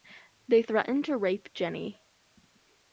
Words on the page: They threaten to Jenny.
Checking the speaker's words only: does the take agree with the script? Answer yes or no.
no